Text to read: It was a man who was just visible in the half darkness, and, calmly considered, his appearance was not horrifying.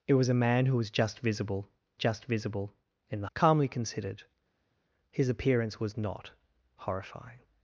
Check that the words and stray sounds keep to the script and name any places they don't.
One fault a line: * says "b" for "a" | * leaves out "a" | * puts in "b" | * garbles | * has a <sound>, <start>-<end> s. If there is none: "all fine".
* puts in "just visible"
* leaves out "half darkness and"